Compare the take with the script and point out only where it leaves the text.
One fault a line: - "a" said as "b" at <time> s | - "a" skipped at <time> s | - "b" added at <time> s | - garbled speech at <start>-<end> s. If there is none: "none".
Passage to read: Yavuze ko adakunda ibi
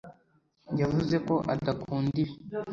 none